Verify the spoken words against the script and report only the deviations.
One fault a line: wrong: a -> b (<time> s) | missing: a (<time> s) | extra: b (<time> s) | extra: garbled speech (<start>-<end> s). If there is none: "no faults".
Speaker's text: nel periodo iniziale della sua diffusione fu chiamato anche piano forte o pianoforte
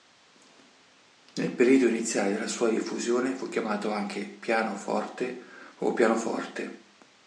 no faults